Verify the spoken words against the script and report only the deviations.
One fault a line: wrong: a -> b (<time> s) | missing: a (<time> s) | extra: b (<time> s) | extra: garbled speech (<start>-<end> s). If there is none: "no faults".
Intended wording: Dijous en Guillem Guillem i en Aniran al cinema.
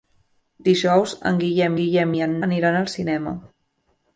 no faults